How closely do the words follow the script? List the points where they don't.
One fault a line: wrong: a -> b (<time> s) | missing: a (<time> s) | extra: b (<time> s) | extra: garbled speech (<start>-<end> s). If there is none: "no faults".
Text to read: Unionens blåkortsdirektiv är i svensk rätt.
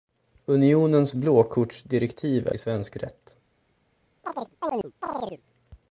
no faults